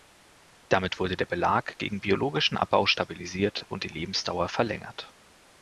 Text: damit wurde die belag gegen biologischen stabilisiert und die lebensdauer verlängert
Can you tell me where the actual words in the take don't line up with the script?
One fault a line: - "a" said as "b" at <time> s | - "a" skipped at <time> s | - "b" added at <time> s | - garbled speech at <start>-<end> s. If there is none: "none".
- "die" said as "der" at 1.1 s
- "abbau" added at 2.6 s